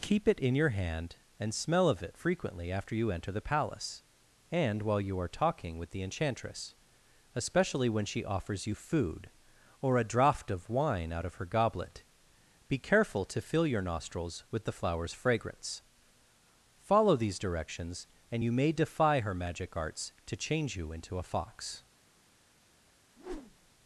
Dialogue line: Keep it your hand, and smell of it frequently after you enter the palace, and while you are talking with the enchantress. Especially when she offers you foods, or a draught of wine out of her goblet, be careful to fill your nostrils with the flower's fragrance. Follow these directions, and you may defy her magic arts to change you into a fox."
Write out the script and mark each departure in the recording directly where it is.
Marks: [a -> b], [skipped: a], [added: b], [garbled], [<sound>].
Keep it [added: in] your hand, and smell of it frequently after you enter the palace, and while you are talking with the enchantress. Especially when she offers you [foods, -> food] or a draught of wine out of her goblet, be careful to fill your nostrils with the flower's fragrance. Follow these directions, and you may defy her magic arts to change you into a fox." [whoosh]